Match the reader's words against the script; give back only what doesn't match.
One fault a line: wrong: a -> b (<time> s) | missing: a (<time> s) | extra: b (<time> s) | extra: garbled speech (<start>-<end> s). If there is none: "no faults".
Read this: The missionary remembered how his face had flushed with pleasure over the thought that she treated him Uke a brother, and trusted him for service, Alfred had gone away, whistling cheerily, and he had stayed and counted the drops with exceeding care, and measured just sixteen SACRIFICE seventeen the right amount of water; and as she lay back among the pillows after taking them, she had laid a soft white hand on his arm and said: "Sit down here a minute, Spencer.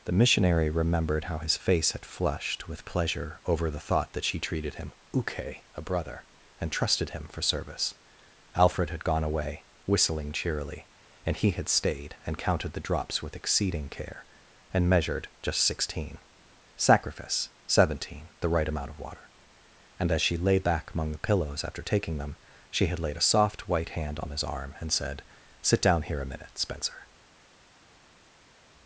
no faults